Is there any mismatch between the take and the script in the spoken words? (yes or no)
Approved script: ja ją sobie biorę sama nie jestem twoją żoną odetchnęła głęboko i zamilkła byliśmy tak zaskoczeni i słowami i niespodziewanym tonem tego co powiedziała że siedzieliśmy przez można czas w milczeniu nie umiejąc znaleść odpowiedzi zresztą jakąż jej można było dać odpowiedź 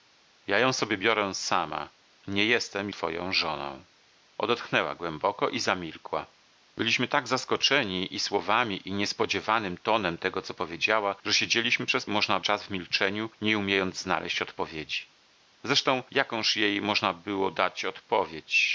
no